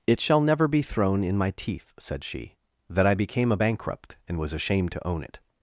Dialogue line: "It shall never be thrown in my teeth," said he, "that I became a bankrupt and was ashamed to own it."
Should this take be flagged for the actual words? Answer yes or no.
yes